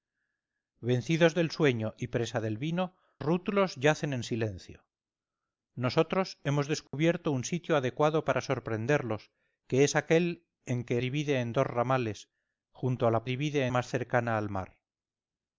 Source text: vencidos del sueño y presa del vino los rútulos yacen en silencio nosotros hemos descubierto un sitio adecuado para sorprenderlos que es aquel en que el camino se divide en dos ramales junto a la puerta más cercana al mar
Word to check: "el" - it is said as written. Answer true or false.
false